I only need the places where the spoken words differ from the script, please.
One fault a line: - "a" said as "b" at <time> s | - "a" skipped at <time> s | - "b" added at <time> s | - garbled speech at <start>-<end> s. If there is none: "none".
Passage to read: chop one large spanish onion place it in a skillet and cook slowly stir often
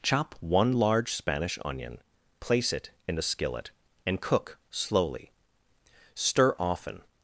none